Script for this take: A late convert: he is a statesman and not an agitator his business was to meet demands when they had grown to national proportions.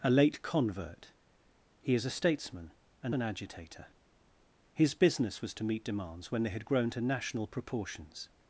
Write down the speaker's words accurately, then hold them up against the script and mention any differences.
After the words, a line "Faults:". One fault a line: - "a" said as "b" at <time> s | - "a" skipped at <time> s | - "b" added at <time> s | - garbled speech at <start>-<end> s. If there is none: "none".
A late convert: he is a statesman and an agitator his business was to meet demands when they had grown to national proportions.
Faults:
- "not" skipped at 3.1 s